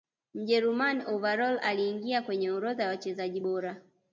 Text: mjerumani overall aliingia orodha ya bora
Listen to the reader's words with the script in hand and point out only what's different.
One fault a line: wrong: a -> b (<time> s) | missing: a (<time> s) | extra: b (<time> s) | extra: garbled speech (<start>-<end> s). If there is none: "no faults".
extra: kwenye (2.2 s)
extra: wachezaji (2.9 s)